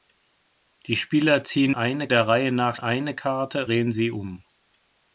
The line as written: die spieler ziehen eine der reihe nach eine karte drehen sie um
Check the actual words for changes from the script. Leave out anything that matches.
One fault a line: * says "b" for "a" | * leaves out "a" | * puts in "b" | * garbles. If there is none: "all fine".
all fine